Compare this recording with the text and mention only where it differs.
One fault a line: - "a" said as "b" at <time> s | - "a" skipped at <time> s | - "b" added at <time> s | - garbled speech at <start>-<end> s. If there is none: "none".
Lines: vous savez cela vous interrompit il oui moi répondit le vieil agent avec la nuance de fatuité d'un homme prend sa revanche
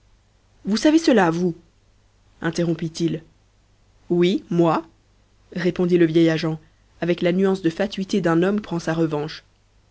none